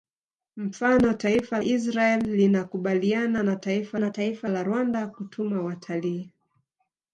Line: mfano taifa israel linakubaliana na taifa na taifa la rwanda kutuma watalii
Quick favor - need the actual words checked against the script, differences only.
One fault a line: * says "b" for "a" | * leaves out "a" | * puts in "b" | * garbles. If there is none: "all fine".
all fine